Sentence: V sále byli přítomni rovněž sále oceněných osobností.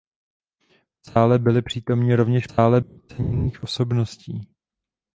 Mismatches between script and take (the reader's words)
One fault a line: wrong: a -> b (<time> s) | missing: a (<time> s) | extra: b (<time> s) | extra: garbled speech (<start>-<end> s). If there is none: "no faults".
no faults